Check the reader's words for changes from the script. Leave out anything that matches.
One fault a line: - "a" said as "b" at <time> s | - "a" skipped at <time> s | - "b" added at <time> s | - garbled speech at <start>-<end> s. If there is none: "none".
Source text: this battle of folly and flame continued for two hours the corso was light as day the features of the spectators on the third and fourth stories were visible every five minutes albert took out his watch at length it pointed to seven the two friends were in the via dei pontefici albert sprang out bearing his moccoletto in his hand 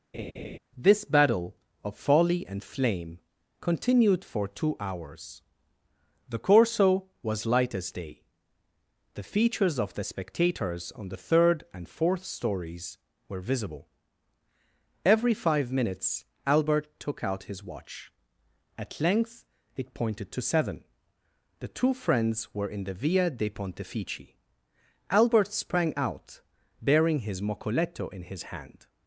none